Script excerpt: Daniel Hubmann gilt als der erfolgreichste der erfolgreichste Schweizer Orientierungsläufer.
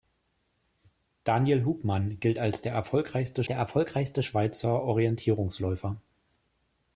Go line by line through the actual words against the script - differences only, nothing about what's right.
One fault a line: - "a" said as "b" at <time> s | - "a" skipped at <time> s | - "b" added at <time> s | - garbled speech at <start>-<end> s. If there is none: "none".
none